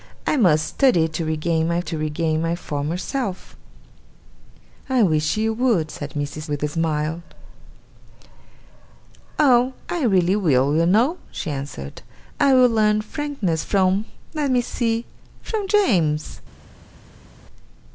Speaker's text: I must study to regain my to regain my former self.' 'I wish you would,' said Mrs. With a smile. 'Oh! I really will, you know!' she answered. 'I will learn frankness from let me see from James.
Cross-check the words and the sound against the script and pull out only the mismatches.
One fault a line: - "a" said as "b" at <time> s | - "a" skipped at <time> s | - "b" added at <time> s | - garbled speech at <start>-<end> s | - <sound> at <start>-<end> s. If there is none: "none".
none